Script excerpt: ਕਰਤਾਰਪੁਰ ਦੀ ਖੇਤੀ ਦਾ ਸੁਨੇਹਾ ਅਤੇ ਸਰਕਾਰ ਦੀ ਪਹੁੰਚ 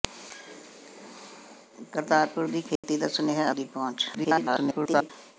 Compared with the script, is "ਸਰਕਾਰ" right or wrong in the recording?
wrong